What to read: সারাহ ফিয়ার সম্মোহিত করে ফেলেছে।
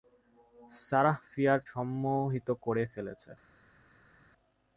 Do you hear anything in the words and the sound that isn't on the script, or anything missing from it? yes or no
no